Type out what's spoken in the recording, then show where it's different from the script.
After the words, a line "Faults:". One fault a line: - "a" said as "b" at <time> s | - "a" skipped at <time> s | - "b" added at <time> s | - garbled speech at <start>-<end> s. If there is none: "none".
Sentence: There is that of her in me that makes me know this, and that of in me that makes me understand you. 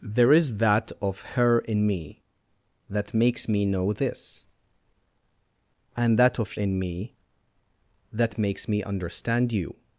There is that of her in me that makes me know this, and that of in me that makes me understand you.
Faults:
none